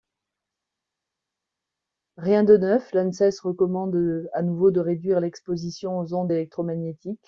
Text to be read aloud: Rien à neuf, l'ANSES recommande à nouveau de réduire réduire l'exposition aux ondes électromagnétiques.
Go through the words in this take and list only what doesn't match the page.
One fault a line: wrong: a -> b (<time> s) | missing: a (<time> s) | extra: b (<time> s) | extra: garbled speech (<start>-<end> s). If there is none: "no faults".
wrong: à -> de (2.4 s)
missing: réduire (5.2 s)